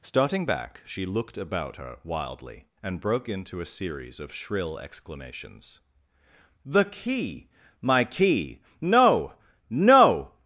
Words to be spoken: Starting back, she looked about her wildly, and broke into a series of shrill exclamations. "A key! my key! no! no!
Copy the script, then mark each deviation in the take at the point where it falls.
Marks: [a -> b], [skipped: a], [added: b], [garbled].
Starting back, she looked about her wildly, and broke into a series of shrill exclamations. ["A -> The] key! my key! no! no!